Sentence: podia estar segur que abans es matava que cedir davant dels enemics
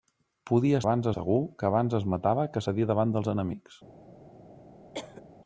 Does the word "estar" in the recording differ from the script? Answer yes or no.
yes